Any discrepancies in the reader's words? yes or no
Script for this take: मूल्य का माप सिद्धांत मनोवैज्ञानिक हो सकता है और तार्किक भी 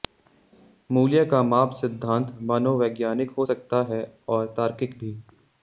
no